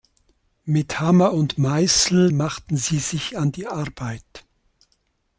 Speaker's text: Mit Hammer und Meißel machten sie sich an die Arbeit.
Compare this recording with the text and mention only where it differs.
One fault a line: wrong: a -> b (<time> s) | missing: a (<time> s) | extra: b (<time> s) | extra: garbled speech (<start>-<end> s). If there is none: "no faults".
no faults